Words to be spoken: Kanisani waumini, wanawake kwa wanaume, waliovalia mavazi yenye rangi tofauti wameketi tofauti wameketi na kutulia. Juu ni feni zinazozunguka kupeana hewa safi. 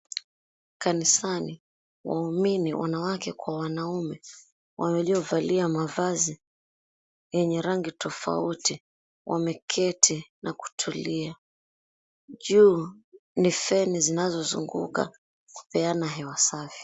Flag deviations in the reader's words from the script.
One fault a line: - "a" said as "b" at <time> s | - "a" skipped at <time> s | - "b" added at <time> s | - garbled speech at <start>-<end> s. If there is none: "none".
- "tofauti wameketi" skipped at 10.3 s